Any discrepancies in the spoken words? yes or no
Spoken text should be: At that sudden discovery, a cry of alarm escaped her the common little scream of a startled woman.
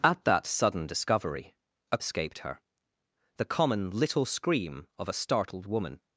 yes